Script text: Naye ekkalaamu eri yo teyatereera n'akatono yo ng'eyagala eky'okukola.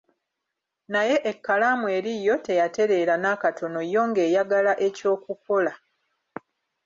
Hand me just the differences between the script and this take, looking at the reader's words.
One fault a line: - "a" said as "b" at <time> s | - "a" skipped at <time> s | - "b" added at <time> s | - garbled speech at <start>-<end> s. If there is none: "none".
none